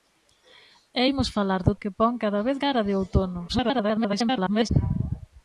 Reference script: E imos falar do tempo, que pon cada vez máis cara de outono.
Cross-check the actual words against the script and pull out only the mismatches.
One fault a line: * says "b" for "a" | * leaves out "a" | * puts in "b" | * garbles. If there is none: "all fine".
* leaves out "tempo"
* leaves out "máis"
* garbles